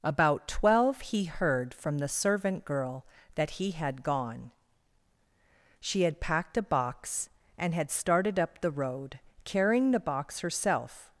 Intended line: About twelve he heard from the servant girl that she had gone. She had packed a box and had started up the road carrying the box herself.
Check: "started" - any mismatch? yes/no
no